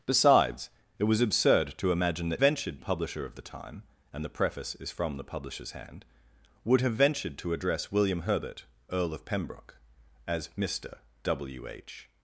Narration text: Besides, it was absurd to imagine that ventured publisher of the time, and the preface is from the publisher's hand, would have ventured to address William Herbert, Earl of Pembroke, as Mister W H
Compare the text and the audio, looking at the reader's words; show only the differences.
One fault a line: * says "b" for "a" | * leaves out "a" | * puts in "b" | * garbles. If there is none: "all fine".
all fine